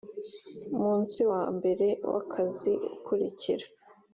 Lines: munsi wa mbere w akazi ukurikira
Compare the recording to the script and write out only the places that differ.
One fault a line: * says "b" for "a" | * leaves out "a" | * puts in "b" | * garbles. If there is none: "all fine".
all fine